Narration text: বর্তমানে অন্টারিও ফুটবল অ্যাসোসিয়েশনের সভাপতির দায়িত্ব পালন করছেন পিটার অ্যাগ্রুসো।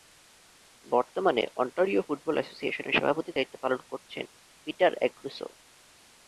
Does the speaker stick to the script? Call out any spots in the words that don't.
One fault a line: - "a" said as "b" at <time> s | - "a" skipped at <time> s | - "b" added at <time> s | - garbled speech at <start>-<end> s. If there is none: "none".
none